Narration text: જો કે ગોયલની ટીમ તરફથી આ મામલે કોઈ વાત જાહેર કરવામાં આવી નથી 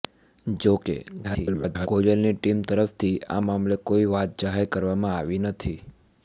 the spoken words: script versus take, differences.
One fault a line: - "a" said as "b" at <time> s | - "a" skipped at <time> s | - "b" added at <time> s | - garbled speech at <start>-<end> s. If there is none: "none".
- garbled speech at 1.2-1.9 s